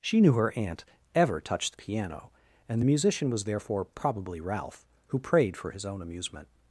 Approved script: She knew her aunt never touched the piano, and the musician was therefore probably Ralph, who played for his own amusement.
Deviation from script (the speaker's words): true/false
true